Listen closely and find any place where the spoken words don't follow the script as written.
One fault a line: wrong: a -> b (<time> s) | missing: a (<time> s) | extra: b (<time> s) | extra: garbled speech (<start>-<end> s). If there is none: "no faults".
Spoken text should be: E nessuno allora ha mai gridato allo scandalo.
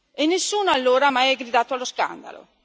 no faults